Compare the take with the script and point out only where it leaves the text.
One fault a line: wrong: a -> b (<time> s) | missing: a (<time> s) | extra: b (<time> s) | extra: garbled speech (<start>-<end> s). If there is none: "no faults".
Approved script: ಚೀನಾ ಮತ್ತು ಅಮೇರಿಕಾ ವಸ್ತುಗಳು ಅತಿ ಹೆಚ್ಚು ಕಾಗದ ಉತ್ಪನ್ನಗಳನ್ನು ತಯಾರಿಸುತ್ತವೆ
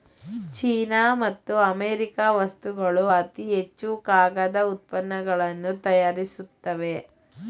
no faults